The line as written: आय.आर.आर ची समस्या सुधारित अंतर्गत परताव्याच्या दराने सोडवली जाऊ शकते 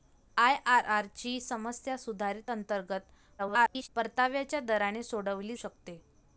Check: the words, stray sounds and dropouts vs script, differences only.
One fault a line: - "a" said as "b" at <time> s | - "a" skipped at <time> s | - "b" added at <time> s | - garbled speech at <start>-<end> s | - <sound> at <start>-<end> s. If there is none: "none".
- garbled speech at 3.4-3.9 s
- "जाऊ" skipped at 5.6 s